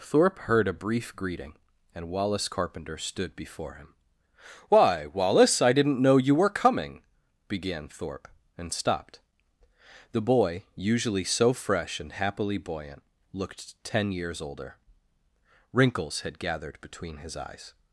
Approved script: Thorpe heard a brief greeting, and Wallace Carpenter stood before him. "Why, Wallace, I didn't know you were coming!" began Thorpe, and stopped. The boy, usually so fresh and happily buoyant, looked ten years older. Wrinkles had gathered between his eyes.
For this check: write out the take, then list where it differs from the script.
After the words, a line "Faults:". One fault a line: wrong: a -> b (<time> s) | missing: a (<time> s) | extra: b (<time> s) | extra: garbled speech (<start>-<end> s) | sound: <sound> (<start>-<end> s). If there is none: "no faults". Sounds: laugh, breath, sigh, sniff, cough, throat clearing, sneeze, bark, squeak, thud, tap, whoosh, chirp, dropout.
Thorpe heard a brief greeting, and Wallace Carpenter stood before him. "Why, Wallace, I didn't know you were coming!" began Thorpe, and stopped. The boy, usually so fresh and happily buoyant, looked ten years older. Wrinkles had gathered between his eyes.
Faults:
no faults